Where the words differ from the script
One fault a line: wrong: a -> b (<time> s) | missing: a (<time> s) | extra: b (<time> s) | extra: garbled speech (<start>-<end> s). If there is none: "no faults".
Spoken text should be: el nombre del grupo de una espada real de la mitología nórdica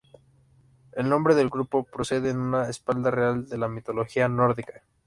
extra: procede (1.8 s)